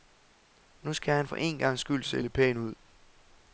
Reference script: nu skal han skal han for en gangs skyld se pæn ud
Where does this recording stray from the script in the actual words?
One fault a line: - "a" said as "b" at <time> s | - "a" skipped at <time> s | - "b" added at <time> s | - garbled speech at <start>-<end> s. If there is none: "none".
- "skal han" skipped at 1.3 s
- "lidt" added at 2.2 s